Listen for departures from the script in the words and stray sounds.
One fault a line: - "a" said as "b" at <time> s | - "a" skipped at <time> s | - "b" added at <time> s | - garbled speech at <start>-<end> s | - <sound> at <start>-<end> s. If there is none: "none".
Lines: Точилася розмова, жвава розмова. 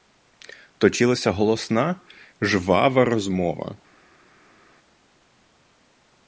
- "розмова" said as "голосна" at 1.3 s